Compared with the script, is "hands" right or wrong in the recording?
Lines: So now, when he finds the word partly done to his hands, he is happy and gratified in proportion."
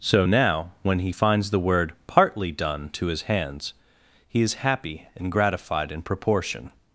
right